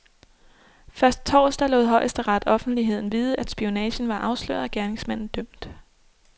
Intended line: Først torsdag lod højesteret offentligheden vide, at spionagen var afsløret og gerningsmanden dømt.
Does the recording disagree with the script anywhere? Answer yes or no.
no